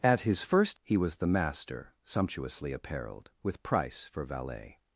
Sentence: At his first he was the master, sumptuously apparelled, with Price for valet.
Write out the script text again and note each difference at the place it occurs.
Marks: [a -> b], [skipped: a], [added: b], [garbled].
At his first he was the master, sumptuously apparelled, with Price for valet.